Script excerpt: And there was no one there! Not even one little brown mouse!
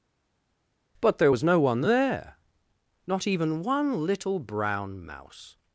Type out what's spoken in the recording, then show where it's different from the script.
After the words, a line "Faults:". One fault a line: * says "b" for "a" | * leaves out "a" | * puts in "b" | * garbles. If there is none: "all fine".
But there was no one there! Not even one little brown mouse!
Faults:
* says "But" for "And"